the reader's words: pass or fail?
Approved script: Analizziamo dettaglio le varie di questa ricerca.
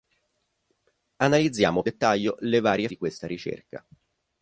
pass